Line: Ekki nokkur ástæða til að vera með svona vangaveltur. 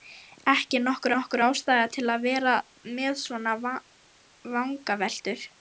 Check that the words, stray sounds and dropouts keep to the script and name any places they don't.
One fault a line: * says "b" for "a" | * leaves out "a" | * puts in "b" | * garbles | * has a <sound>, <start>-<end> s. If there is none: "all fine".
* puts in "nokkur"